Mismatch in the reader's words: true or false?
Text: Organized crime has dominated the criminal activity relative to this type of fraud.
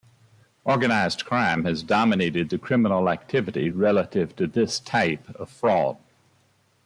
false